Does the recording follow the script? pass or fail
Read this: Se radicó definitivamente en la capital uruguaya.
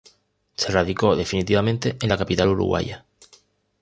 pass